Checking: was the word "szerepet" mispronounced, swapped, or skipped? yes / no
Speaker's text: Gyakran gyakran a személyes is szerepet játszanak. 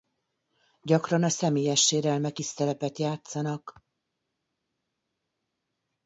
no